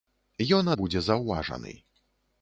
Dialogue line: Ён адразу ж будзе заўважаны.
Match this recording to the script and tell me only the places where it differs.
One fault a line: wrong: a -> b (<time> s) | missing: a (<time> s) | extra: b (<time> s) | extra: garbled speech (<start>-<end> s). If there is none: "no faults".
missing: адразу (0.7 s)